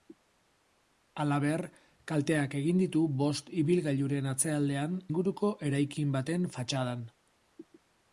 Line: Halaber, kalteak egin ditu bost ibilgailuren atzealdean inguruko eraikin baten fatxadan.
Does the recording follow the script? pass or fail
pass